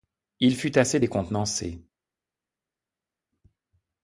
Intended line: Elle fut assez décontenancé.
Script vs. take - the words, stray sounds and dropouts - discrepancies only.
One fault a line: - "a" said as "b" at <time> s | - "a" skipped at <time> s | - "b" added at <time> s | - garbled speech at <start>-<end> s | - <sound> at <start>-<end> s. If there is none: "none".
- "Elle" said as "Il" at 0.4 s